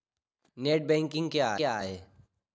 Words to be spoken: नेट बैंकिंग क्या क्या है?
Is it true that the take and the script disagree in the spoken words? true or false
false